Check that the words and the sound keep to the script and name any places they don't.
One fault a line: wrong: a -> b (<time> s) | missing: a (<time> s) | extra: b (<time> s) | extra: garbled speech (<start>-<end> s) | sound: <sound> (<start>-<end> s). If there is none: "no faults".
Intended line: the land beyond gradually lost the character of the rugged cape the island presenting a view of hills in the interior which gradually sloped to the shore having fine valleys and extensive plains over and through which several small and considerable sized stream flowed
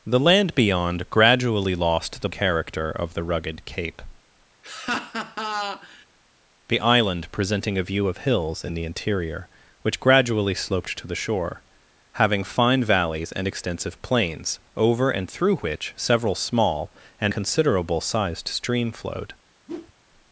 sound: laugh (4.6-6.1 s)
sound: whoosh (19.7-19.9 s)